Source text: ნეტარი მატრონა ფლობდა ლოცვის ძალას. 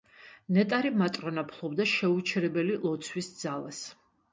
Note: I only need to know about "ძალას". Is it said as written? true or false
true